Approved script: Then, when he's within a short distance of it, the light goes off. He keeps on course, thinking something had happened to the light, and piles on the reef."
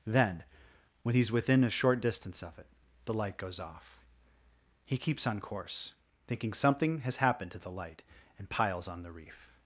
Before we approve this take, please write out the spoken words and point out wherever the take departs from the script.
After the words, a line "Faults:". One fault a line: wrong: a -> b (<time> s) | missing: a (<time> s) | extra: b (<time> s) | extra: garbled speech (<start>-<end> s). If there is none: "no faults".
Then, when he's within a short distance of it, the light goes off. He keeps on course, thinking something has happened to the light, and piles on the reef."
Faults:
wrong: had -> has (7.0 s)